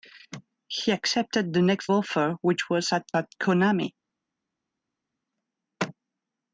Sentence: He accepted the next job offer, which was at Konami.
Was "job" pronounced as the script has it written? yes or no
no